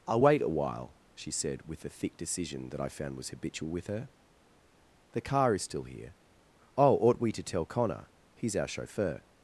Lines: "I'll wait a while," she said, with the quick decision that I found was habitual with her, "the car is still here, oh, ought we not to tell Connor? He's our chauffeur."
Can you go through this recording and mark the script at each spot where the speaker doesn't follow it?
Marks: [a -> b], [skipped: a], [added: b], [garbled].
"I'll wait a while," she said, with the [quick -> thick] decision that I found was habitual with her, "the car is still here, oh, ought we [skipped: not] to tell Connor? He's our chauffeur."